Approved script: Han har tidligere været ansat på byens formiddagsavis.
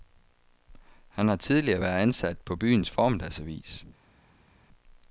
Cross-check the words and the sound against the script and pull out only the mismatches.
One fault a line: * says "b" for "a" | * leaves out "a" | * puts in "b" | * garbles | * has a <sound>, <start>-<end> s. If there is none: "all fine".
all fine